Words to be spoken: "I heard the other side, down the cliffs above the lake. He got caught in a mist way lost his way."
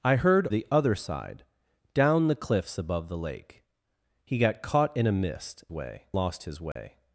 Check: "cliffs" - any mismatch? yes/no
no